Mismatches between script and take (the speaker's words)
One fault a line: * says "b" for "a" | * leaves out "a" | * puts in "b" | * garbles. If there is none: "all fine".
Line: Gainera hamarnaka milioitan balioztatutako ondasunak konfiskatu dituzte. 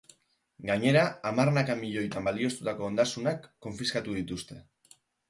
all fine